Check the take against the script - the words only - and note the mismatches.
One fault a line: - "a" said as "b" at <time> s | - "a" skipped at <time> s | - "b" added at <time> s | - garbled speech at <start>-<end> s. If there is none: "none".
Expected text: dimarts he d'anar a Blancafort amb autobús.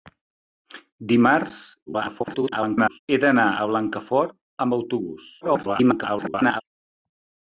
- garbled speech at 1.9-3.0 s
- garbled speech at 5.4-6.6 s